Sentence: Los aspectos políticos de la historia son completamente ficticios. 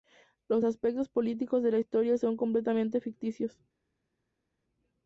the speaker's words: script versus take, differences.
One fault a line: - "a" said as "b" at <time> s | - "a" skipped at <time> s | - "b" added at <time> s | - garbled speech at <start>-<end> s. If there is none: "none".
none